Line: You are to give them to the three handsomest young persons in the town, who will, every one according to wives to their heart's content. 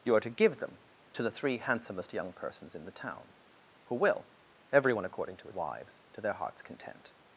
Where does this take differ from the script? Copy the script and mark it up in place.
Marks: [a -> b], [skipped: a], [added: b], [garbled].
You are to give them to the three handsomest young persons in the town, who will, every one according to wives to their heart's content.